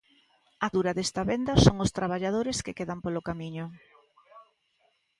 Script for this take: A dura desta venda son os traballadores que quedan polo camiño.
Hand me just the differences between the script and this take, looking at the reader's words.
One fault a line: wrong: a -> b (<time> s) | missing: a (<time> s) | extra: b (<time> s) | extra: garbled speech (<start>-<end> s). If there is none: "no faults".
no faults